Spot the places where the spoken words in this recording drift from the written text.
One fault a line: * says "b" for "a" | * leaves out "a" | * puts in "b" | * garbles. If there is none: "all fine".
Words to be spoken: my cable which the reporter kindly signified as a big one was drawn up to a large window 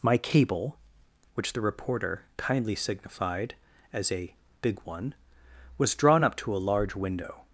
all fine